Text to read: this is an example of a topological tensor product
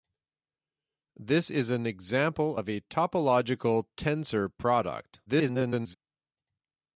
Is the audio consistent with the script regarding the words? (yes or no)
no